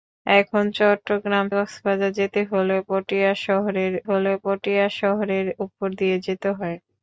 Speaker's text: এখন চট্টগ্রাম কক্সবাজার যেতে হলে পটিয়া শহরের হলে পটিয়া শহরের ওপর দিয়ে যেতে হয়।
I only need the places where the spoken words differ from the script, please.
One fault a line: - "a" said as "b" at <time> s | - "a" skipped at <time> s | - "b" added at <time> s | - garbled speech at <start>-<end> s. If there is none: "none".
none